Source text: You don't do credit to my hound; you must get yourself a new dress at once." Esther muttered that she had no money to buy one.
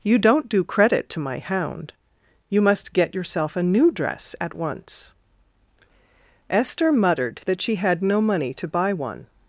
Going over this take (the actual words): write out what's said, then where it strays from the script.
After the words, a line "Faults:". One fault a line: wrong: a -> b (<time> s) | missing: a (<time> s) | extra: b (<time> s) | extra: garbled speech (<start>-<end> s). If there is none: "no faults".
You don't do credit to my hound; you must get yourself a new dress at once." Esther muttered that she had no money to buy one.
Faults:
no faults